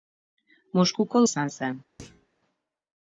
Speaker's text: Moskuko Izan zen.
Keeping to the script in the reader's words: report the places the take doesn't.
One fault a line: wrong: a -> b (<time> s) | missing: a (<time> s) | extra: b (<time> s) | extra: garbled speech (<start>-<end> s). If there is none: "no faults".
no faults